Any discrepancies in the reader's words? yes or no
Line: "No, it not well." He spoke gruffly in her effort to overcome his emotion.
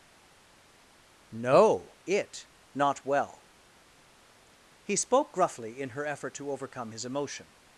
no